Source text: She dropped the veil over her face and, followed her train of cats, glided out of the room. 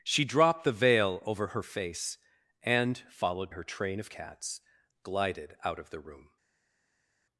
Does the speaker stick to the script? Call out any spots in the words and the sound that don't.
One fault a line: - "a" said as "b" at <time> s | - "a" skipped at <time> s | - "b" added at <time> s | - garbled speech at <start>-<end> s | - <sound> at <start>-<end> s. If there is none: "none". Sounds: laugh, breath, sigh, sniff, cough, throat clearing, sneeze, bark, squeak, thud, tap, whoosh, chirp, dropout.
none